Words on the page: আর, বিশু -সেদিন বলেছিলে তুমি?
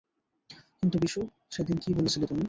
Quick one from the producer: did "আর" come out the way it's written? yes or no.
no